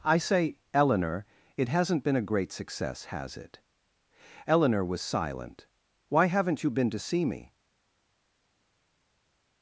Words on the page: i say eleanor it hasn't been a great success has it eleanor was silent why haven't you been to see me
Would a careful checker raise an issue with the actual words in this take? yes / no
no